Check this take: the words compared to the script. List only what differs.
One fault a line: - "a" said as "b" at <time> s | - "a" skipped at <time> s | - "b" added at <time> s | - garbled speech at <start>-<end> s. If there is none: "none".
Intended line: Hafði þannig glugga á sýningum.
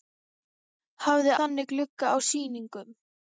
none